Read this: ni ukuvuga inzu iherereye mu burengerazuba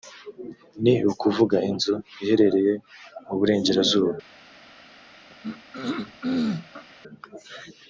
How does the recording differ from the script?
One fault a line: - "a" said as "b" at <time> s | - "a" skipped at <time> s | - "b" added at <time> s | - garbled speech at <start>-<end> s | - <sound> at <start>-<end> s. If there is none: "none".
- throat clearing at 5.3-6.9 s